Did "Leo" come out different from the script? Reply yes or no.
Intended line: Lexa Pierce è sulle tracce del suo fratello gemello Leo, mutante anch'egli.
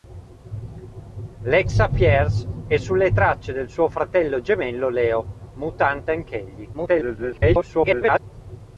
no